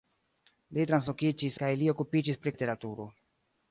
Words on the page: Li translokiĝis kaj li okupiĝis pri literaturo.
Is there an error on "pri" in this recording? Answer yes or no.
no